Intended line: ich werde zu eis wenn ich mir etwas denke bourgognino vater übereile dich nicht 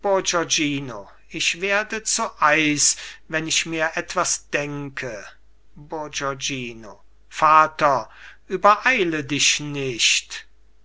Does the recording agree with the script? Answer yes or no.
yes